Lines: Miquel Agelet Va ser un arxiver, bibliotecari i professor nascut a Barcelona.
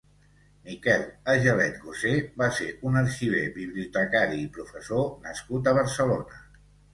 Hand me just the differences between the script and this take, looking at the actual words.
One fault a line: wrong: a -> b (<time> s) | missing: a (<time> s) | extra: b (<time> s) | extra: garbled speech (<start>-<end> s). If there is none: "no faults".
extra: Gosé (1.8 s)